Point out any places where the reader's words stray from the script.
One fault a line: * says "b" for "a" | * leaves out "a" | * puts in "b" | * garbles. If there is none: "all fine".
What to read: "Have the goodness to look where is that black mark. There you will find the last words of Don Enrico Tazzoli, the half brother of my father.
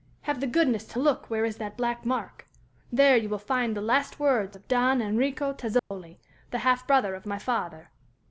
all fine